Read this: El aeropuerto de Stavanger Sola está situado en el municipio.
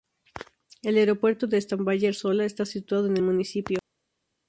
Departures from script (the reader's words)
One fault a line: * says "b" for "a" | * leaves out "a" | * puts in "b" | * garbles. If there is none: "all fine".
all fine